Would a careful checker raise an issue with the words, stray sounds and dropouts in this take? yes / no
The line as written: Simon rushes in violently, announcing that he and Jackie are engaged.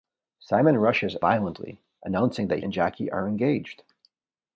yes